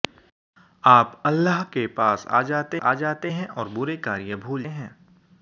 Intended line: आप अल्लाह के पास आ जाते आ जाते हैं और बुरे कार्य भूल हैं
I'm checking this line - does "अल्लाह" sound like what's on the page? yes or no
yes